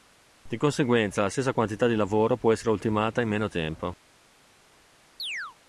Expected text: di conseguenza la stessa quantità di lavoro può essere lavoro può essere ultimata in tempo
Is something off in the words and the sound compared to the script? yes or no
yes